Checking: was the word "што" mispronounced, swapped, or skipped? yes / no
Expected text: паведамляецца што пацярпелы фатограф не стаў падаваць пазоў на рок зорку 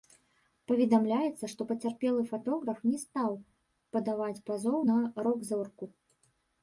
no